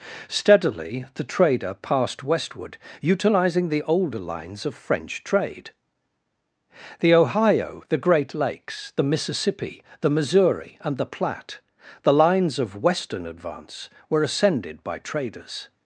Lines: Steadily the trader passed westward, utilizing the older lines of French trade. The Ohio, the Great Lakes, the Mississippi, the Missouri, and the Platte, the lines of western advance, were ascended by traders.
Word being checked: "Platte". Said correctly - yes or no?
yes